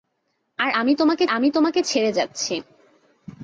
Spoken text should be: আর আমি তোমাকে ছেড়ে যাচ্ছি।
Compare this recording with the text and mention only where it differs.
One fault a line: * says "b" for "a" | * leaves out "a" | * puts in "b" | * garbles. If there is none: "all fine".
* puts in "আমি তোমাকে"